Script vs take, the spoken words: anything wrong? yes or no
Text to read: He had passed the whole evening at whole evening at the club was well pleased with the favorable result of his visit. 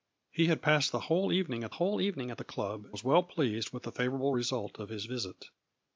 no